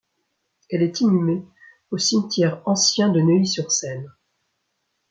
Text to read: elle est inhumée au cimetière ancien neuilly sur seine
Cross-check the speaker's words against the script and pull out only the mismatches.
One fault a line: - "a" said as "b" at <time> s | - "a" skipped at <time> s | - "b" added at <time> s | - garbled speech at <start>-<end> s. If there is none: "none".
- "de" added at 3.1 s